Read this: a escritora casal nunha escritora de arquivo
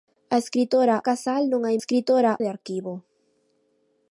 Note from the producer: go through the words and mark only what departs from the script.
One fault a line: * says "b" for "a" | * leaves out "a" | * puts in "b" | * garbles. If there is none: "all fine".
all fine